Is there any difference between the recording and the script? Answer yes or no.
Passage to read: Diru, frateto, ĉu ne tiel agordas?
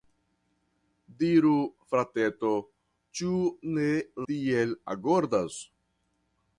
no